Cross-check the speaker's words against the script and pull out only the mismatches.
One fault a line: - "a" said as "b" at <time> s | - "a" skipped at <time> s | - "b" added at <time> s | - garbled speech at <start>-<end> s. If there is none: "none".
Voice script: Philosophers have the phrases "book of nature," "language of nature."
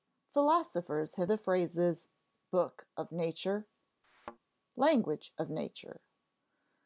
none